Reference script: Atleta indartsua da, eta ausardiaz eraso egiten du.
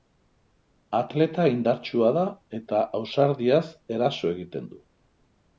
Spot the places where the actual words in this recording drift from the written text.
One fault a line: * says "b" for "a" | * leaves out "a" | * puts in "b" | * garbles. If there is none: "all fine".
all fine